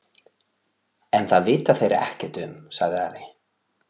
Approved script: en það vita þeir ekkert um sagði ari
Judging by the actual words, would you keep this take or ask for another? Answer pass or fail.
pass